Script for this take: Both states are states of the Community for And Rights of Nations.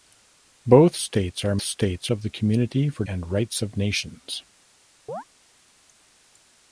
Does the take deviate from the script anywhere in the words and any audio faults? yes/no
yes